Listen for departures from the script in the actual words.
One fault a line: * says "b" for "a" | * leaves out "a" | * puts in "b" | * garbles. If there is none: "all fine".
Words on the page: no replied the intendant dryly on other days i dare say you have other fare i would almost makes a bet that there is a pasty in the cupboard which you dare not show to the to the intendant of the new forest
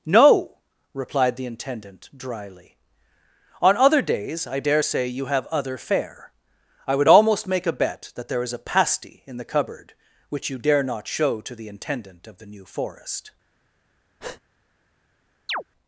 * says "make" for "makes"
* leaves out "to the"